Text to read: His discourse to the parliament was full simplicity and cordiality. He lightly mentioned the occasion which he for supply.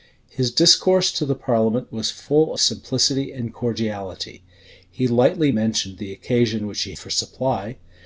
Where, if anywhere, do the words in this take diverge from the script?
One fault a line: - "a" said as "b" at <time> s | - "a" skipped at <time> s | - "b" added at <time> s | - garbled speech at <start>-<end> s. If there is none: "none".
none